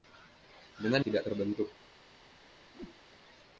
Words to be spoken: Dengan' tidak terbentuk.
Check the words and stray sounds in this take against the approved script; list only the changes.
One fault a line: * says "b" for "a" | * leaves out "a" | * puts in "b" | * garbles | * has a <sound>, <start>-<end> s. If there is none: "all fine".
* has a whoosh, 2.7-3.0 s